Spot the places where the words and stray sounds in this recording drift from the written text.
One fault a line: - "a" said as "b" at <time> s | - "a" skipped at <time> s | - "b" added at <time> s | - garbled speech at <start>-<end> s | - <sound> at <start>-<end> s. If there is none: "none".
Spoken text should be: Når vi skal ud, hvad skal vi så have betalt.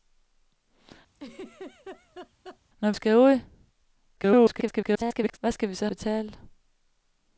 - laugh at 1.1-2.6 s
- "vi" skipped at 2.9 s
- garbled speech at 4.2-5.4 s
- "have" skipped at 5.9 s